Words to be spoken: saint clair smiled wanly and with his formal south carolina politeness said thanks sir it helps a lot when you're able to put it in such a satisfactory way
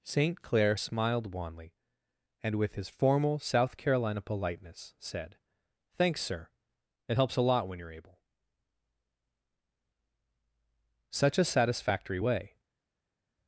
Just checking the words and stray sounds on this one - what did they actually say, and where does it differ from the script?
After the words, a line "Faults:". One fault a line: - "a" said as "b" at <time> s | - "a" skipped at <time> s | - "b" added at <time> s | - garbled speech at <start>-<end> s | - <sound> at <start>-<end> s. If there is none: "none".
saint clair smiled wanly and with his formal south carolina politeness said thanks sir it helps a lot when you're able such a satisfactory way
Faults:
- "to put it in" skipped at 8.2 s